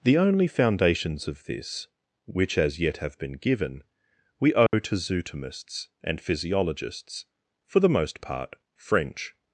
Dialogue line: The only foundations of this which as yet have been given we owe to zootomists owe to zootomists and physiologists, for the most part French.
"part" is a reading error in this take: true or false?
false